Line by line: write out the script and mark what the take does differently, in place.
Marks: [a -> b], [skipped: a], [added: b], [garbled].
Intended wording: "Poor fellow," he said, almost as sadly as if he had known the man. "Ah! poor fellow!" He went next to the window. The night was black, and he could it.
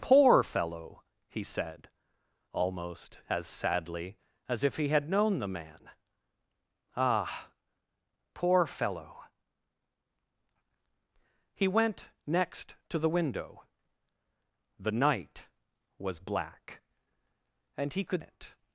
"Poor fellow," he said, almost as sadly as if he had known the man. "Ah! poor fellow!" He went next to the window. The night was black, and he could it.